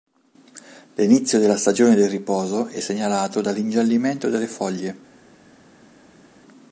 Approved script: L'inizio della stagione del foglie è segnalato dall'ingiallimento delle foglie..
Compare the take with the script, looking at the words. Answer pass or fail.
fail